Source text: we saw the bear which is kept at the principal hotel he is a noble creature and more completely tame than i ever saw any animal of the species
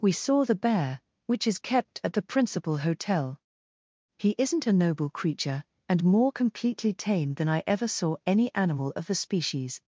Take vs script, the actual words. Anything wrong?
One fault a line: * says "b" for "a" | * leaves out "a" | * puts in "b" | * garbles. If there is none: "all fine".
* says "isn't" for "is"